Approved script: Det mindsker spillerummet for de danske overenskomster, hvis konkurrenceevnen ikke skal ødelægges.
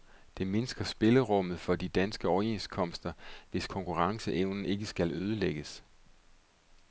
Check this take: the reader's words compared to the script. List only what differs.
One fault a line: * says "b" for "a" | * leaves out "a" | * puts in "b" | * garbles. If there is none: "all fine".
all fine